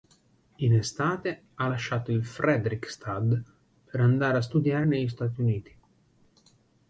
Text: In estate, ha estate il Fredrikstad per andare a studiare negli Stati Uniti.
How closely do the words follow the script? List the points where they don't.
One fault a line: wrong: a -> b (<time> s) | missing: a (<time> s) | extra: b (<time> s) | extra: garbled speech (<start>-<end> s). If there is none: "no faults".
wrong: estate -> lasciato (1.6 s)